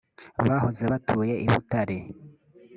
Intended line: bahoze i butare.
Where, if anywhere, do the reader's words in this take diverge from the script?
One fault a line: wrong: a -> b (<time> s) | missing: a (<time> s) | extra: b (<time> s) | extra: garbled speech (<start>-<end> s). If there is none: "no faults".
extra: batuye (0.9 s)